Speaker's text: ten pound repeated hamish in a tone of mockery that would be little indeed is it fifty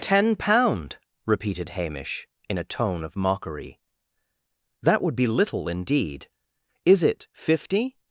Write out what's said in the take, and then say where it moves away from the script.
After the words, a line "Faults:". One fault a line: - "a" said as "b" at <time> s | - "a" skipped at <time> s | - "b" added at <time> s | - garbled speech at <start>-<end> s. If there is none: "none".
ten pound repeated hamish in a tone of mockery that would be little indeed is it fifty
Faults:
none